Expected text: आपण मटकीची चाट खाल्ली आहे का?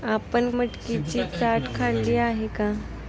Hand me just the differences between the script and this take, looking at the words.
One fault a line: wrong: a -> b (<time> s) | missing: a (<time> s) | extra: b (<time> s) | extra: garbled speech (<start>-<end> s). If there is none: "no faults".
no faults